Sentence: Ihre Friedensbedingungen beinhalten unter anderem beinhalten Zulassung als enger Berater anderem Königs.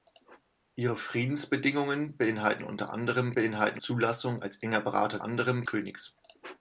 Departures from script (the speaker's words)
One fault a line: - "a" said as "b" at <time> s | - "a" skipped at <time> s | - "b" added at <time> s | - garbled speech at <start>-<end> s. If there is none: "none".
none